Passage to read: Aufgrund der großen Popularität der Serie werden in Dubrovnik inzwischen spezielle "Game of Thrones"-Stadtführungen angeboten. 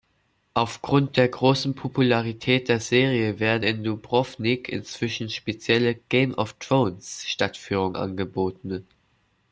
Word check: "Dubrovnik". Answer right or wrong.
right